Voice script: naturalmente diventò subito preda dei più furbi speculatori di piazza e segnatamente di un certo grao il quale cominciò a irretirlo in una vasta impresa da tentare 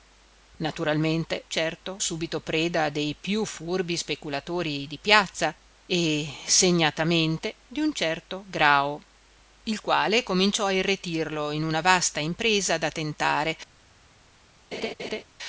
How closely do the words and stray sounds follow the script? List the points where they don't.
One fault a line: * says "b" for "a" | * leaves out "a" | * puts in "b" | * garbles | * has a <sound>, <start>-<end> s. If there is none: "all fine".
* says "certo" for "diventò"
* has a laugh, 14.7-15.2 s